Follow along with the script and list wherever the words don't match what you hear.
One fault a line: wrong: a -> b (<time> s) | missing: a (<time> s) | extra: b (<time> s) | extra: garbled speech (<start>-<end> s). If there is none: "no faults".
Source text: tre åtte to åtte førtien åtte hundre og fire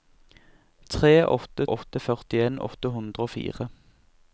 missing: to (1.7 s)